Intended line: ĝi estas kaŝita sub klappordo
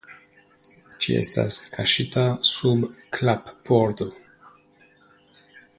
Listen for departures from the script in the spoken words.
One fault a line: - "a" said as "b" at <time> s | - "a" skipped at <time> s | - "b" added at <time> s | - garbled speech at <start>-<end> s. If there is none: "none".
none